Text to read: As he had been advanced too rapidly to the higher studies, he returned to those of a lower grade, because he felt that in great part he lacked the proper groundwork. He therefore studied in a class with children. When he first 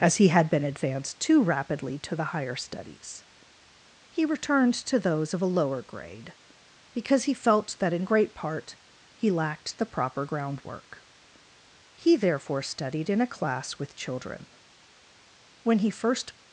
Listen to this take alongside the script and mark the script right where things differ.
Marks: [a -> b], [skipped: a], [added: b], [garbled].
As he had been advanced too rapidly to the higher studies, he returned to those of a lower grade, because he felt that in great part he lacked the proper groundwork. He therefore studied in a class with children. When he first